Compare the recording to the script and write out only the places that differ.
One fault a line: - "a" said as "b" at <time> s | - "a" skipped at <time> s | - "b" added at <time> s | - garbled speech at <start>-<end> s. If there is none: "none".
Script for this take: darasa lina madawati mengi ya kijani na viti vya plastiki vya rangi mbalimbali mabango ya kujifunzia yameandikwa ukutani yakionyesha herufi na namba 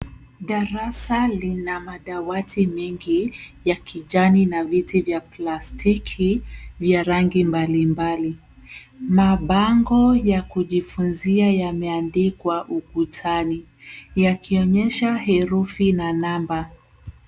none